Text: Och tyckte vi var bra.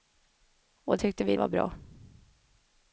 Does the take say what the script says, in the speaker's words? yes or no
yes